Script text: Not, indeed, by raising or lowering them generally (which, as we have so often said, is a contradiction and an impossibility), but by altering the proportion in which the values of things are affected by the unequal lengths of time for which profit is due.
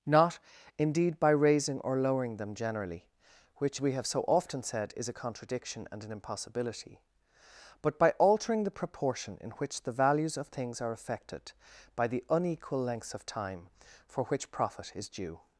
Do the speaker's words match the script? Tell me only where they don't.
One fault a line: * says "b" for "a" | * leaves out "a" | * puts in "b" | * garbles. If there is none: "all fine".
* leaves out "as"